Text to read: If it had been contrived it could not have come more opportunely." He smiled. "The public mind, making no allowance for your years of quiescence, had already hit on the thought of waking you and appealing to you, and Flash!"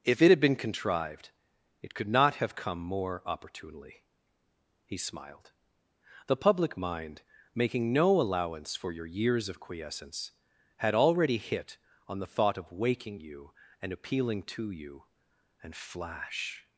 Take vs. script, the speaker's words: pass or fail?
pass